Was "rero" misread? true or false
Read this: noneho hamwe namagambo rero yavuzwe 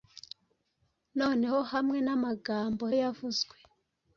true